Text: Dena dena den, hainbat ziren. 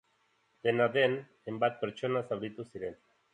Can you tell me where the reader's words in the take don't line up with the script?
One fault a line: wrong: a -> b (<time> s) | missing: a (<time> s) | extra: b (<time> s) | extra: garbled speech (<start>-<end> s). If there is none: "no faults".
missing: dena (0.9 s)
extra: pertsona zauritu (1.8 s)